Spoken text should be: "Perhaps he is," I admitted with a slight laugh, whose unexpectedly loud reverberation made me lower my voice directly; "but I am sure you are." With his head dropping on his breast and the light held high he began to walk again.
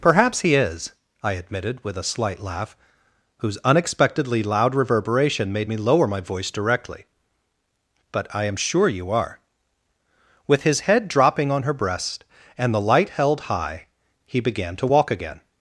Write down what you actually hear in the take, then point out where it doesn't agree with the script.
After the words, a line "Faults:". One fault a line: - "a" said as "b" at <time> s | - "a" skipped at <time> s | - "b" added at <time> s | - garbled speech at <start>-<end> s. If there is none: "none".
"Perhaps he is," I admitted with a slight laugh, whose unexpectedly loud reverberation made me lower my voice directly; "but I am sure you are." With his head dropping on her breast and the light held high he began to walk again.
Faults:
- "his" said as "her" at 11.6 s